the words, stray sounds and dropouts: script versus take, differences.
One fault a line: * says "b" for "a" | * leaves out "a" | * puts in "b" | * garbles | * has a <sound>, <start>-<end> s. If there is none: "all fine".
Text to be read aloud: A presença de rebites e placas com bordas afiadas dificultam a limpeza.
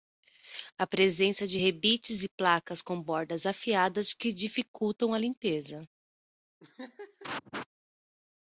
* puts in "que"
* has a laugh, 6.6-7.7 s